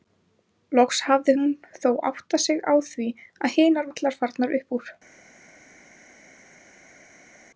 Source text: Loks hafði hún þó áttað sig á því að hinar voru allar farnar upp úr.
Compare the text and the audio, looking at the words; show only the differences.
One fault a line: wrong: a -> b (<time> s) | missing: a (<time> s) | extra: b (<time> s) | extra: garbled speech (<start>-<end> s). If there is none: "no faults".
missing: voru (3.9 s)